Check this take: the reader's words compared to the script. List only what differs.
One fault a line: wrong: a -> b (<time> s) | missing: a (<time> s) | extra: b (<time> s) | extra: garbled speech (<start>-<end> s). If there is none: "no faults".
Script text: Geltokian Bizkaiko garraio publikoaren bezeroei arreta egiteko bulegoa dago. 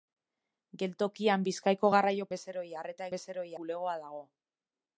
missing: publikoaren (2.3 s)
wrong: egiteko -> bezeroei (3.2 s)